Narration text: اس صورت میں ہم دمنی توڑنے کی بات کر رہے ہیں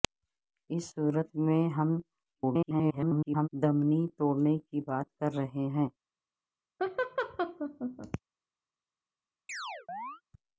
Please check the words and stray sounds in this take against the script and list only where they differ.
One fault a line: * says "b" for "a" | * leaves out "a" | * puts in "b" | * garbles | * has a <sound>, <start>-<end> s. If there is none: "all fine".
* garbles
* has a laugh, 6.8-8.2 s
* has a chirp, 9.5-10.2 s